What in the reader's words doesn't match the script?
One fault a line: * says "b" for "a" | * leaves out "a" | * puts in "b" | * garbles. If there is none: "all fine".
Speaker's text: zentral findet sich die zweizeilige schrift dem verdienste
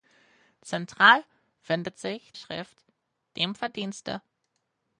* leaves out "die zweizeilige"